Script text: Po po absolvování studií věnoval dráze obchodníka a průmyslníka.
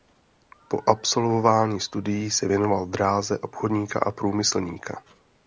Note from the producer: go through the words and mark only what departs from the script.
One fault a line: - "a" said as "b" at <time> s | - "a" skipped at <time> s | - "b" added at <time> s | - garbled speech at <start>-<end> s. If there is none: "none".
- "po" skipped at 0.8 s
- "se" added at 2.3 s